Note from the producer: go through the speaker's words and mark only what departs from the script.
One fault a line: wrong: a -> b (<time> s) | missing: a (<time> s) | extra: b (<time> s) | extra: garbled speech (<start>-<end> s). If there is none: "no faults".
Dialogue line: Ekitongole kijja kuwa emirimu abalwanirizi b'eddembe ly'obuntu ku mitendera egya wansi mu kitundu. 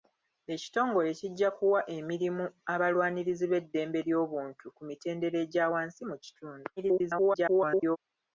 extra: garbled speech (6.8-8.0 s)